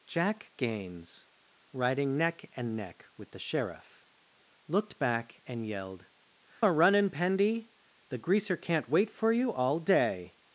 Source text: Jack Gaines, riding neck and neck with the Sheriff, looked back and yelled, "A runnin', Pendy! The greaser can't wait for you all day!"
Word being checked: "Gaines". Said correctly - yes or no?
yes